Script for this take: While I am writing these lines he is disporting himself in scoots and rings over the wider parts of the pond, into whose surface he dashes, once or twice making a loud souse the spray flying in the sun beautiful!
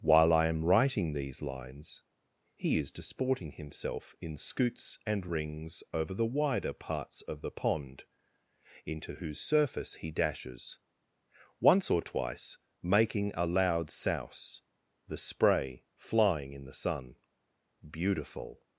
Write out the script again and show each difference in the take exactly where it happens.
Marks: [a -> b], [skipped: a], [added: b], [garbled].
While I am writing these lines he is disporting himself in scoots and rings over the wider parts of the pond, into whose surface he dashes, once or twice making a loud souse the spray flying in the sun beautiful!